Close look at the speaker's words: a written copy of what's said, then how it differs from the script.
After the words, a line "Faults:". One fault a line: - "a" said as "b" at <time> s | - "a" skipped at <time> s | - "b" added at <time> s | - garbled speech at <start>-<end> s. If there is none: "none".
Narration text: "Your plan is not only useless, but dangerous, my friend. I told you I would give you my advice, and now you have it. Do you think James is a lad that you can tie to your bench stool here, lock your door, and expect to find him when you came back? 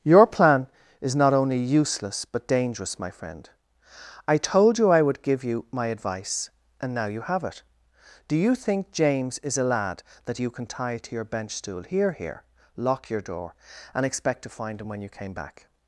"Your plan is not only useless, but dangerous, my friend. I told you I would give you my advice, and now you have it. Do you think James is a lad that you can tie to your bench stool here here, lock your door, and expect to find him when you came back?
Faults:
- "here" added at 12.1 s